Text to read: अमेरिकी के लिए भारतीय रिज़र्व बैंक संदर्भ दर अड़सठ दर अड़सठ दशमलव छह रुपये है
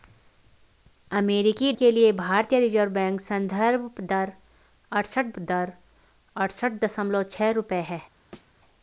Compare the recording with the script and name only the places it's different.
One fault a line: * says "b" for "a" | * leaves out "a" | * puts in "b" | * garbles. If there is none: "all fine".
all fine